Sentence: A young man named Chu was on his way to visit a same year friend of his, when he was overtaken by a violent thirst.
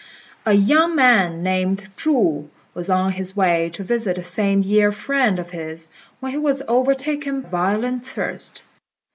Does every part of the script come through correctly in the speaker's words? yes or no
no